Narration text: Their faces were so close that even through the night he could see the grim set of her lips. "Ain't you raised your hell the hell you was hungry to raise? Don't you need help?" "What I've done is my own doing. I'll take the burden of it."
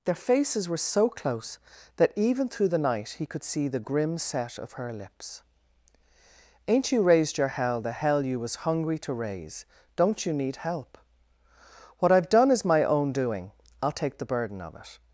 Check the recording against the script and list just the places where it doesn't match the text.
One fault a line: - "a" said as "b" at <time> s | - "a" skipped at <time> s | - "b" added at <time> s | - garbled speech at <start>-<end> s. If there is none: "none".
none